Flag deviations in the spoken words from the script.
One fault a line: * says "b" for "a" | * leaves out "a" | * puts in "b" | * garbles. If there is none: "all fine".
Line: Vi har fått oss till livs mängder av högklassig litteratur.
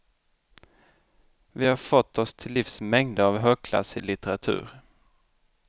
all fine